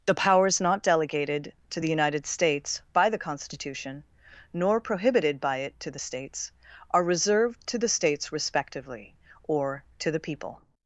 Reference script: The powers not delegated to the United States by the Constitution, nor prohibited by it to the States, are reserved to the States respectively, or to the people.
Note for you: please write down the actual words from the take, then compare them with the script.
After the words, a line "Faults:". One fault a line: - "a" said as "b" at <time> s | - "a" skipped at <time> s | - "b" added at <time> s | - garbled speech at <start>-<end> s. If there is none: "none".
The powers not delegated to the United States by the Constitution, nor prohibited by it to the States, are reserved to the States respectively, or to the people.
Faults:
none